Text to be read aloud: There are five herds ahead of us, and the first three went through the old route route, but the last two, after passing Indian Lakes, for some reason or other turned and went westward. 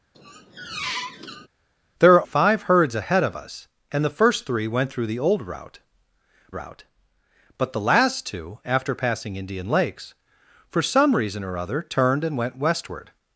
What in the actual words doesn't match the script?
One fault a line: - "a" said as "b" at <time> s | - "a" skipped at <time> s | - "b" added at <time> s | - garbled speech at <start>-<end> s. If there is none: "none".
none